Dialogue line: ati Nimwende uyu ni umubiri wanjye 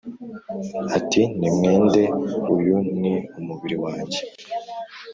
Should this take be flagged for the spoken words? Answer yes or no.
no